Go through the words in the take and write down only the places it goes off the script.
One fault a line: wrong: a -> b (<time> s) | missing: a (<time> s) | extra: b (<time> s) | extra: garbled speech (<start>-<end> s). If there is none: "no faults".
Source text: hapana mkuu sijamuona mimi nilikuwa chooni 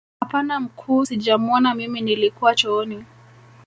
no faults